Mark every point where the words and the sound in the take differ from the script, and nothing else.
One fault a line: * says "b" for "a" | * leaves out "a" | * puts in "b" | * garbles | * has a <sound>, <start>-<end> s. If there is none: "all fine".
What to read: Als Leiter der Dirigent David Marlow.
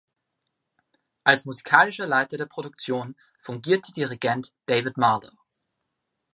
* puts in "musikalischer"
* puts in "Produktion fungierte"